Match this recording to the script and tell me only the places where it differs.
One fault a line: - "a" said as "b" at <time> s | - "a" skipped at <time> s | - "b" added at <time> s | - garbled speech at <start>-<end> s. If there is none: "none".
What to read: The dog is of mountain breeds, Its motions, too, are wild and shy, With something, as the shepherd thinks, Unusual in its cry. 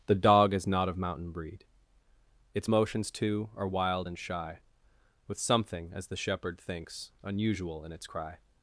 - "not" added at 0.7 s
- "breeds" said as "breed" at 1.3 s